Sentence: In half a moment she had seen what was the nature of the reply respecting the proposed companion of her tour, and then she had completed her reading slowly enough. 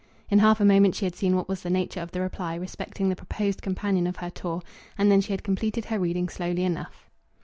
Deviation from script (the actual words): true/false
false